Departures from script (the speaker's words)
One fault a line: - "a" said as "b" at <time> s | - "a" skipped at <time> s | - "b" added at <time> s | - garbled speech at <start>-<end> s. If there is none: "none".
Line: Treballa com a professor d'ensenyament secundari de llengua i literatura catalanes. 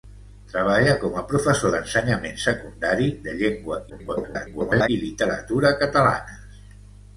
- garbled speech at 3.9-4.9 s